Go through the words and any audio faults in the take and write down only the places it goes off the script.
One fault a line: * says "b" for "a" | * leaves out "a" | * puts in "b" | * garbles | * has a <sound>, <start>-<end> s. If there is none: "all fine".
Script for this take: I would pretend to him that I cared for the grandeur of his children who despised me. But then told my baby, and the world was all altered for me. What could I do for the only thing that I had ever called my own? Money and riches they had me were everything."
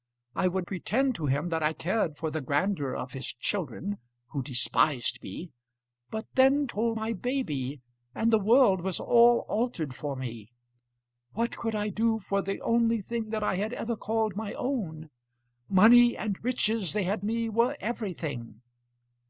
all fine